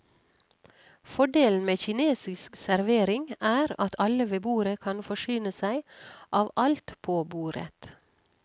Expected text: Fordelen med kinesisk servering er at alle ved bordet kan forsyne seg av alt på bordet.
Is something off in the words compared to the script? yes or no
no